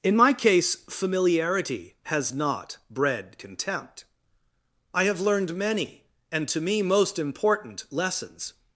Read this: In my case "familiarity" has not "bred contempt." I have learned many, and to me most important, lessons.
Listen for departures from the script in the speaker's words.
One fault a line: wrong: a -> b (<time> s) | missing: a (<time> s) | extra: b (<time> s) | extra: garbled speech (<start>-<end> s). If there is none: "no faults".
no faults